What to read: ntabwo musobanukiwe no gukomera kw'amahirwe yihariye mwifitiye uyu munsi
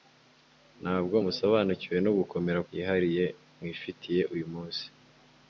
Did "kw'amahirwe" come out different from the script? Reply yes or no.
yes